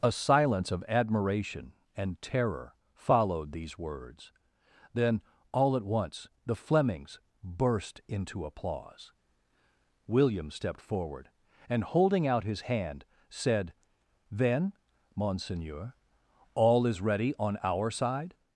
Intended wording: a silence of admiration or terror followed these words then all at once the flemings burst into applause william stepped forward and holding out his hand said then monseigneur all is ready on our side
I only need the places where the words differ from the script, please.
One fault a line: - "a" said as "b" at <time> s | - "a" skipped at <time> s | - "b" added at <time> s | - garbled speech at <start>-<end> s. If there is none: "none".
- "or" said as "and" at 1.9 s